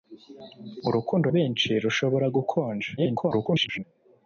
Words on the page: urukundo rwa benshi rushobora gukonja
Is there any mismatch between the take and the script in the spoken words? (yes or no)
yes